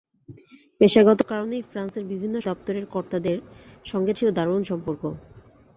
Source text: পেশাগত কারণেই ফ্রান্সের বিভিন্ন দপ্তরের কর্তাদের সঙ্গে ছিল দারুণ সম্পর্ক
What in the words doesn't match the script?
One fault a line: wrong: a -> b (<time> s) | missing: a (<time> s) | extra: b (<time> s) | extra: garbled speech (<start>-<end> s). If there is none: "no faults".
no faults